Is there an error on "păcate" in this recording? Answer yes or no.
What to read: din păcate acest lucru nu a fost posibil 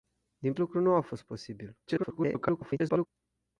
yes